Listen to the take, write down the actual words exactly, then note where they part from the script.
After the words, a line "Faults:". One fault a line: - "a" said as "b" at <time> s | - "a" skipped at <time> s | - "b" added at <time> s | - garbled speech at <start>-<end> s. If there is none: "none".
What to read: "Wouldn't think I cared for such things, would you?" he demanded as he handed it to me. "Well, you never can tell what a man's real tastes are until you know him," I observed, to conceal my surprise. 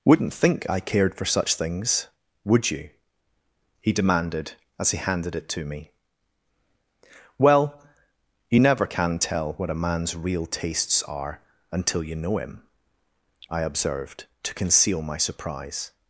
"Wouldn't think I cared for such things, would you?" he demanded as he handed it to me. "Well, you never can tell what a man's real tastes are until you know him," I observed, to conceal my surprise.
Faults:
none